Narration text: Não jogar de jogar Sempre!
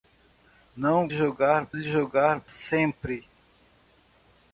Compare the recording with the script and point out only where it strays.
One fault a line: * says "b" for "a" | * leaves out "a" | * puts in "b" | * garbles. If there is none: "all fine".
all fine